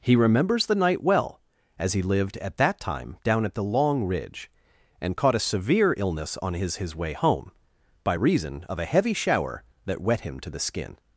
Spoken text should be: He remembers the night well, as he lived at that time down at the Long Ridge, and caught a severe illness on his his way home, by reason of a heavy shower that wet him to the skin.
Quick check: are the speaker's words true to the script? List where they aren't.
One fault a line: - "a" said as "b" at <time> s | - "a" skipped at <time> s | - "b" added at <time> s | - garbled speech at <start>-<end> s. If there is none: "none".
none